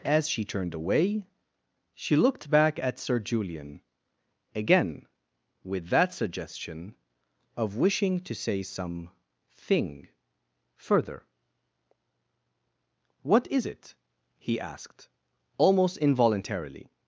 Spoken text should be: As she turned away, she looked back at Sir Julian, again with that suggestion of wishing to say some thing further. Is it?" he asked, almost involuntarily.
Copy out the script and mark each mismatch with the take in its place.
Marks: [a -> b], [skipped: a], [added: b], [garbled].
As she turned away, she looked back at Sir Julian, again with that suggestion of wishing to say some thing further. [added: What] Is it?" he asked, almost involuntarily.